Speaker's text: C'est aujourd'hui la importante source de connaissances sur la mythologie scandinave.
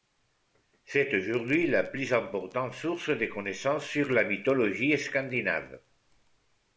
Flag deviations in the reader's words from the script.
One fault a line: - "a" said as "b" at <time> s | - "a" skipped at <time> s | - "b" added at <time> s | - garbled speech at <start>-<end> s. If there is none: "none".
- "plus" added at 1.8 s